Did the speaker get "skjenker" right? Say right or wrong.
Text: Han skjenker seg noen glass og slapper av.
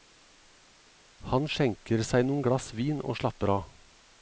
right